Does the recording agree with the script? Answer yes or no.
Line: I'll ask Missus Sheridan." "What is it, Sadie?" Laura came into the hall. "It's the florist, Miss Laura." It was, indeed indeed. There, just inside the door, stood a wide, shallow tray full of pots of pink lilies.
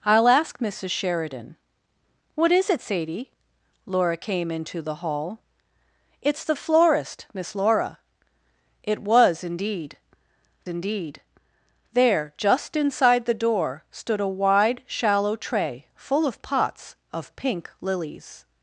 yes